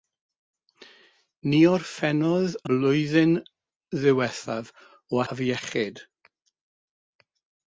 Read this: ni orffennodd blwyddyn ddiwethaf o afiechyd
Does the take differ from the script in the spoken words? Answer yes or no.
no